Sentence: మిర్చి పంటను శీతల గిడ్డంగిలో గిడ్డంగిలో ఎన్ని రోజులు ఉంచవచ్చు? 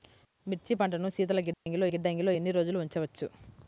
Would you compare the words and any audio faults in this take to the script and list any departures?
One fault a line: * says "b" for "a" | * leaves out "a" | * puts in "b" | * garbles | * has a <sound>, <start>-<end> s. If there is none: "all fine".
* has a dropout, 1.5-1.7 s